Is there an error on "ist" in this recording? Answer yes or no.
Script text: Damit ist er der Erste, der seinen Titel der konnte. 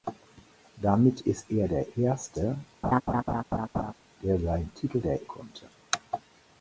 no